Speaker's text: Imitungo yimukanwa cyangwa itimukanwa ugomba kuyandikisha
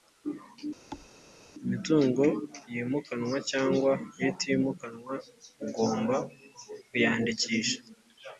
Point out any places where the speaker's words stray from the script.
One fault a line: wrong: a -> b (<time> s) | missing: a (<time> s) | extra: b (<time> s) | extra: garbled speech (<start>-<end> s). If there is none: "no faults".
no faults